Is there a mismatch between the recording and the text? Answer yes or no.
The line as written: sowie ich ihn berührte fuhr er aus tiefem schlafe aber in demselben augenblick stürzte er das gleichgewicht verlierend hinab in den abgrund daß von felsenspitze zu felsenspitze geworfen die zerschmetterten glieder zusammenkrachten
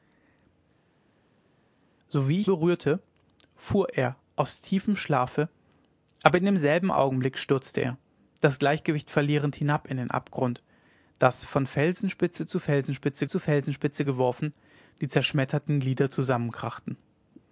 yes